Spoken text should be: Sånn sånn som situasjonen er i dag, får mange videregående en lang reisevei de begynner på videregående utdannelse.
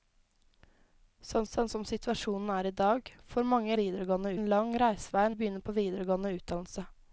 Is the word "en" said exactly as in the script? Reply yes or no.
yes